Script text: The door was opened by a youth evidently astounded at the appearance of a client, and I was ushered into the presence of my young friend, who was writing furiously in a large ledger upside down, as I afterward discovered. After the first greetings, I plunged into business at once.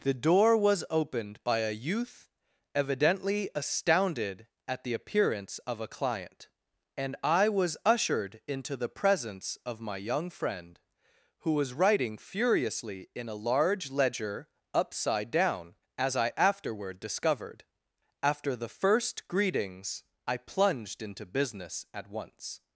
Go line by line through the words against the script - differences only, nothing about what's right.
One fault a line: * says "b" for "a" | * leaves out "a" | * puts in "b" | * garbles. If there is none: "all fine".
all fine